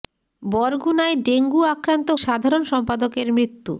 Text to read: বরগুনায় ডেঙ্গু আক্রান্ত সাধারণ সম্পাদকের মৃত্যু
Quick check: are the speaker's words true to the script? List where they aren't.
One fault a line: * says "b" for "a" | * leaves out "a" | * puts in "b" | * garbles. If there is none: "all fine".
all fine